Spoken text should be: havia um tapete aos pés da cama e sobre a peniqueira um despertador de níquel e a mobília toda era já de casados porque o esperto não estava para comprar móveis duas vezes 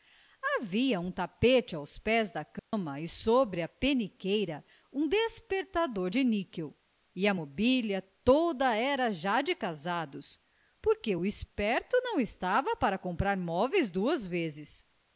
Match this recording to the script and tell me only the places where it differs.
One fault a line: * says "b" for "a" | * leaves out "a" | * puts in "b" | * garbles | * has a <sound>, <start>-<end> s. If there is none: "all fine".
* has a dropout, 2.6-2.7 s